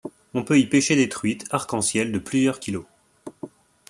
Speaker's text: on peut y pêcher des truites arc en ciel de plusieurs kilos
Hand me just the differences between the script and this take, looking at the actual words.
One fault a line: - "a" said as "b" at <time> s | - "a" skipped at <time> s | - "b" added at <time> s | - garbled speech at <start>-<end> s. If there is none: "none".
none